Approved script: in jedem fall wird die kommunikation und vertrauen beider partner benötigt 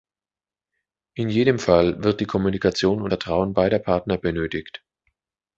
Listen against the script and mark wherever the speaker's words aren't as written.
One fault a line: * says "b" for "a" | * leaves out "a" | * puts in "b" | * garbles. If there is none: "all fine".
all fine